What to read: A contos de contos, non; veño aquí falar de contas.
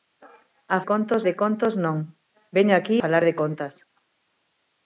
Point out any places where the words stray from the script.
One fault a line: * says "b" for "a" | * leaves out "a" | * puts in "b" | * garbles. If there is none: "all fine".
all fine